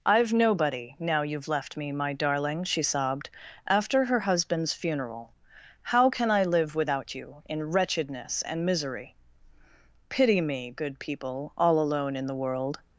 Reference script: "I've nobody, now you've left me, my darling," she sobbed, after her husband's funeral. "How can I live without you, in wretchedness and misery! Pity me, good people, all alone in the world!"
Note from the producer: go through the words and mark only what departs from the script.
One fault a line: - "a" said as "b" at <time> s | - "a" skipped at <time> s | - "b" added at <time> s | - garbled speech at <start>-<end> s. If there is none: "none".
none